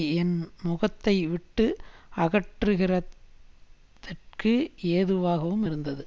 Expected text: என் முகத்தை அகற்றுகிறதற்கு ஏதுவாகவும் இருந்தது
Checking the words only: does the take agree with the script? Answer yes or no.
no